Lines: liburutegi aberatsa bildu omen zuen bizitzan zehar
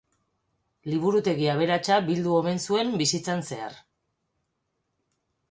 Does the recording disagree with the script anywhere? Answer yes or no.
no